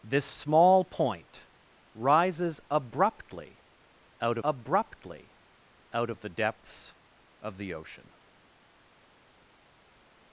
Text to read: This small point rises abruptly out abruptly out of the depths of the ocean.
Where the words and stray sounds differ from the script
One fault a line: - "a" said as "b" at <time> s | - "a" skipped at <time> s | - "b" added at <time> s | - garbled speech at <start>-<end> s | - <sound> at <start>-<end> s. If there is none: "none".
none